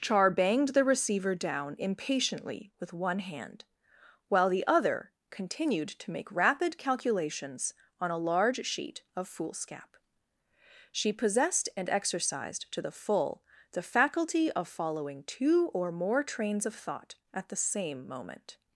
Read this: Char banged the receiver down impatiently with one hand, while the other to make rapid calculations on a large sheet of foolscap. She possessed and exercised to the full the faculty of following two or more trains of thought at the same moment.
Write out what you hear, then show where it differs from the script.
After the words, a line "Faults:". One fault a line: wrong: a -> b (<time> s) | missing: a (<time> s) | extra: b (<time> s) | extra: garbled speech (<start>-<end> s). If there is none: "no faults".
Char banged the receiver down impatiently with one hand, while the other continued to make rapid calculations on a large sheet of foolscap. She possessed and exercised to the full the faculty of following two or more trains of thought at the same moment.
Faults:
extra: continued (5.3 s)